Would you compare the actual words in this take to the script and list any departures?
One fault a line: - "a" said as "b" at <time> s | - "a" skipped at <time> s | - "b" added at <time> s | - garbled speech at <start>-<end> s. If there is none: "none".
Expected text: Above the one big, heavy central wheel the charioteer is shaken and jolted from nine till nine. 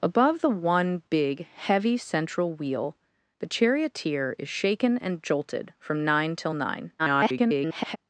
- garbled speech at 7.0-8.0 s